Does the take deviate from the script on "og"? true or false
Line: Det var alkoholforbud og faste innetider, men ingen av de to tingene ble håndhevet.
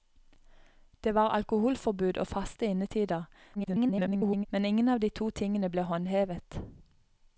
false